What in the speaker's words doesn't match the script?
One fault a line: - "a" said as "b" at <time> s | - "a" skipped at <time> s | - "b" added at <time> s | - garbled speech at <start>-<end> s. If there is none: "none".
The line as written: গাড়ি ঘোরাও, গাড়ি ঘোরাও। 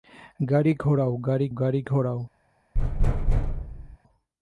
- "গাড়ি" added at 1.5 s